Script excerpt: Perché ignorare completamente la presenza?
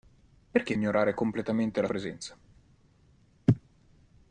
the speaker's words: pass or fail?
pass